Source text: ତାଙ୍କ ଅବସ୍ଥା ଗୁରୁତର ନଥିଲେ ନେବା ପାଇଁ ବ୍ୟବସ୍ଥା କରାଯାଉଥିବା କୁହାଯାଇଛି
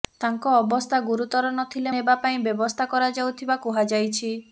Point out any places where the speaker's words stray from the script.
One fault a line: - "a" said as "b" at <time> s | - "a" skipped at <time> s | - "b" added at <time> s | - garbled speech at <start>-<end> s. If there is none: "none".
none